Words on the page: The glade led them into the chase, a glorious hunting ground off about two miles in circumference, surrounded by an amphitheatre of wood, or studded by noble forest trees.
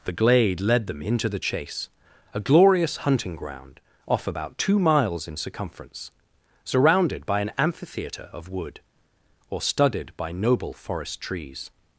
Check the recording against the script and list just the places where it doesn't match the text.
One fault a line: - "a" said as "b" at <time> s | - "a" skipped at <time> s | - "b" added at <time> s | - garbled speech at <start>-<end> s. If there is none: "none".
none